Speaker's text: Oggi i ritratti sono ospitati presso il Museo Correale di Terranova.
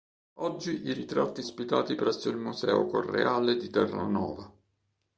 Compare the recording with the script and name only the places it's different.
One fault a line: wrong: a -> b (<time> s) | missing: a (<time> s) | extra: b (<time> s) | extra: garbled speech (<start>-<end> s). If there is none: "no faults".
missing: sono (1.4 s)